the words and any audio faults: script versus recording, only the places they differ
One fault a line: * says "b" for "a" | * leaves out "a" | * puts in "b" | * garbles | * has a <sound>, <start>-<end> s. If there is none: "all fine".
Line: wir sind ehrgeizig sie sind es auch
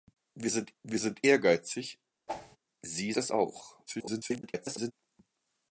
* puts in "wir sind"
* has a whoosh, 2.3-2.6 s
* leaves out "sind"
* garbles